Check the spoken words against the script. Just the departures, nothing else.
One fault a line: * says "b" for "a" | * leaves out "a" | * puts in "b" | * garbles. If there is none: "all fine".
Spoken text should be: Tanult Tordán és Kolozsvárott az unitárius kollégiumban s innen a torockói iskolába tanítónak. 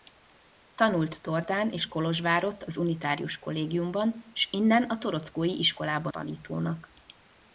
all fine